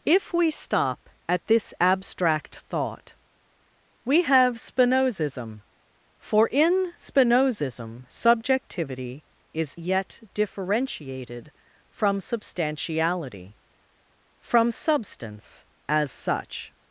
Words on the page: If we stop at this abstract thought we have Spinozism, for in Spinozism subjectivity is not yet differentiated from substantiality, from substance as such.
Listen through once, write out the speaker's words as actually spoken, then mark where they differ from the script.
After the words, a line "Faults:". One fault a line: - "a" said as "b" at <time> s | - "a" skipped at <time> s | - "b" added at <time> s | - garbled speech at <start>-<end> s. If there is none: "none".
If we stop at this abstract thought we have Spinozism, for in Spinozism subjectivity is yet differentiated from substantiality, from substance as such.
Faults:
- "not" skipped at 9.8 s